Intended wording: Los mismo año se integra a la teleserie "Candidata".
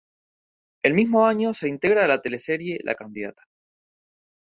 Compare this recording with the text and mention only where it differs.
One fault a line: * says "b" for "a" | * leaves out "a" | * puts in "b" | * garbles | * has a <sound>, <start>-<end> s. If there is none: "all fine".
* says "El" for "Los"
* puts in "La"